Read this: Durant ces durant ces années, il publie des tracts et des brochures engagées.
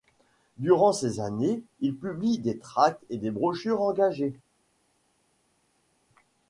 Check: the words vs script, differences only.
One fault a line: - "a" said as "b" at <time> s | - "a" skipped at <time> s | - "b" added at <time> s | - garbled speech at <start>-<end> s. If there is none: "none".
- "durant ces" skipped at 1.2 s